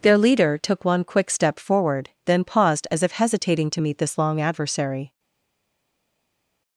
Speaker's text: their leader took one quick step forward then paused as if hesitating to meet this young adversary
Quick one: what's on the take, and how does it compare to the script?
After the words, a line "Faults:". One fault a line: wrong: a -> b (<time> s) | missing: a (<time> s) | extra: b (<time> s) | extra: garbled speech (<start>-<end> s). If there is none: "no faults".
their leader took one quick step forward then paused as if hesitating to meet this long adversary
Faults:
wrong: young -> long (4.2 s)